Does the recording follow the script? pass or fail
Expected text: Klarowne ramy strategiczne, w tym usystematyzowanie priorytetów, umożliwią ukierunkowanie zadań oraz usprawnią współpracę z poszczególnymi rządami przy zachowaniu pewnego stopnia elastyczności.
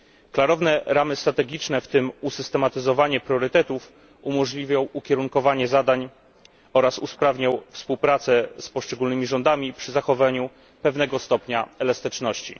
pass